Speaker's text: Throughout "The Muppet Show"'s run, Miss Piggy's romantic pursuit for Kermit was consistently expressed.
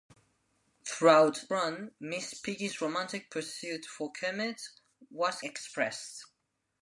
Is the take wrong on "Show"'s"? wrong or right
wrong